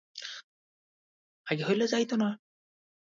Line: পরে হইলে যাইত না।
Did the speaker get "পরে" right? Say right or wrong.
wrong